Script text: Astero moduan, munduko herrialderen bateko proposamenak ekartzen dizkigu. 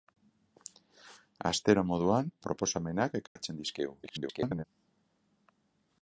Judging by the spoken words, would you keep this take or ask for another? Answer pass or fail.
fail